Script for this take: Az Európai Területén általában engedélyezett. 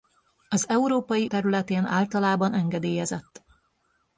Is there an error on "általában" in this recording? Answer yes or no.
no